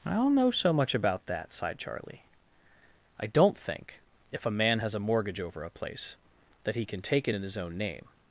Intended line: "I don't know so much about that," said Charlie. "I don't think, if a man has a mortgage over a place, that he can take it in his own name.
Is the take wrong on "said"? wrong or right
wrong